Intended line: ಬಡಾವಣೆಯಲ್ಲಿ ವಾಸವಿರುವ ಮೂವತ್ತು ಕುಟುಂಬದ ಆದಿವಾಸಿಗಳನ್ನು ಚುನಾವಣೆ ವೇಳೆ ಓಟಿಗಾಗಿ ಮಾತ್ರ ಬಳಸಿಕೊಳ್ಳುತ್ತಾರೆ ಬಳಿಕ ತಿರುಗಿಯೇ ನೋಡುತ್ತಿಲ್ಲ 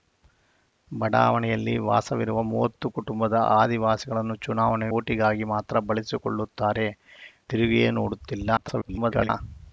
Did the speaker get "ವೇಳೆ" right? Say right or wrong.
wrong